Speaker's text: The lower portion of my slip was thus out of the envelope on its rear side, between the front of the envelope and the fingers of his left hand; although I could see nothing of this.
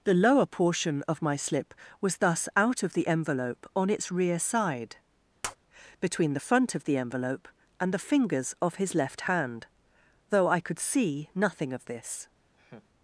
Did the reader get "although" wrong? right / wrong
wrong